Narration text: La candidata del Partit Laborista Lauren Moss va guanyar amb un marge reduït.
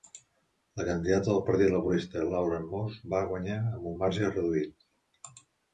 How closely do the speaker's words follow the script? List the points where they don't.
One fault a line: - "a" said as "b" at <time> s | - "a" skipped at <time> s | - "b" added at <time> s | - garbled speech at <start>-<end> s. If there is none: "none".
none